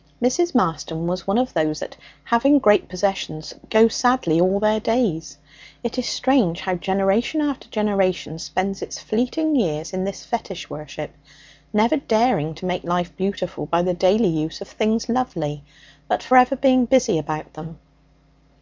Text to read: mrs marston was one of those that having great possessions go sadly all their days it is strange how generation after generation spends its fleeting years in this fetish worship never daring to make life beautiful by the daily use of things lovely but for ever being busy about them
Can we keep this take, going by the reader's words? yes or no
yes